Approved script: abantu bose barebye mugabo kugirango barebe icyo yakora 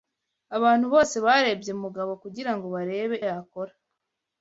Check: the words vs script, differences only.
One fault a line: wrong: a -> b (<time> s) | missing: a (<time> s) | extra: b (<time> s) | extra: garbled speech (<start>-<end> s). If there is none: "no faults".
missing: icyo (3.1 s)